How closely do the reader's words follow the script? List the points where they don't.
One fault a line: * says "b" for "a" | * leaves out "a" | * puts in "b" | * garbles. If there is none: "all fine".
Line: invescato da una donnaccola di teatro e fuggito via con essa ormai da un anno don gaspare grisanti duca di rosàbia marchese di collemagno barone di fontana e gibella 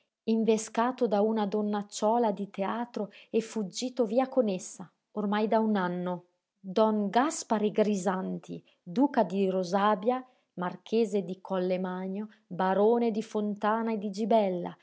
* puts in "di"